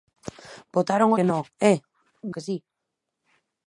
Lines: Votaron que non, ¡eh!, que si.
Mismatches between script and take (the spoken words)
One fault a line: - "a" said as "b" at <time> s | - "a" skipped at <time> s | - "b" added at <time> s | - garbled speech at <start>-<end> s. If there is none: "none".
none